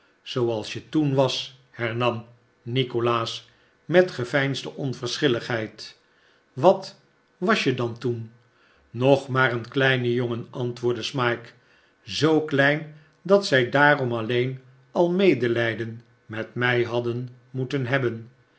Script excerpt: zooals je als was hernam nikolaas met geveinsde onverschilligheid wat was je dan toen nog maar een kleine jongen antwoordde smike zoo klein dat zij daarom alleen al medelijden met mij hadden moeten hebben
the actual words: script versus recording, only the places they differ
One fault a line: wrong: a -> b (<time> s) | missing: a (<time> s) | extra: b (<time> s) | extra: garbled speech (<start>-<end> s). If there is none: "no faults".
wrong: als -> toen (0.9 s)